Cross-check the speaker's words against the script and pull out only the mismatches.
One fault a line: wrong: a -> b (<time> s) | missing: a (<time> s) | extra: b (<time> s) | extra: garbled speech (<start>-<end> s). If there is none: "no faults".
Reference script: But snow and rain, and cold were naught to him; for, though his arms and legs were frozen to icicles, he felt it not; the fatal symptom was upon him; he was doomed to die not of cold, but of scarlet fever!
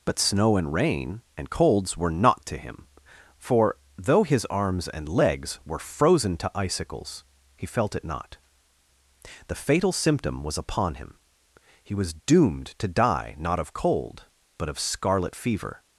wrong: cold -> colds (1.5 s)